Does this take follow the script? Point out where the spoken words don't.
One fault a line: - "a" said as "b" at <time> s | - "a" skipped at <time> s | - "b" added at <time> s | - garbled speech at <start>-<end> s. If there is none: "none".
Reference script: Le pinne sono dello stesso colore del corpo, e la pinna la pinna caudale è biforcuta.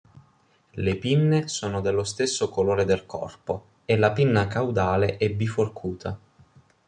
- "la pinna" skipped at 4.5 s